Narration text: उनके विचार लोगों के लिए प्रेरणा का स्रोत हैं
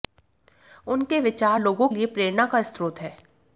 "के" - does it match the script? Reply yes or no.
no